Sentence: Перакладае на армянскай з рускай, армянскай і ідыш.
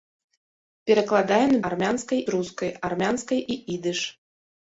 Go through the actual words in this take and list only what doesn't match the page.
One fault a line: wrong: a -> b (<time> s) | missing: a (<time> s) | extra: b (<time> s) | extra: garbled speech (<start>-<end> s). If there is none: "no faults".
no faults